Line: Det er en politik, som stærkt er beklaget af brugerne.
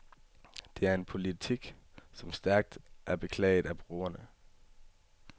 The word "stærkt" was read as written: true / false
true